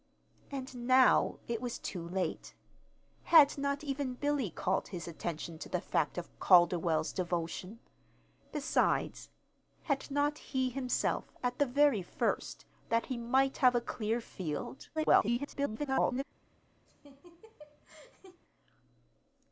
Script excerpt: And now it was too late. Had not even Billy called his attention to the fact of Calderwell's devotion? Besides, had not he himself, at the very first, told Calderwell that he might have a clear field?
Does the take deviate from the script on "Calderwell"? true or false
true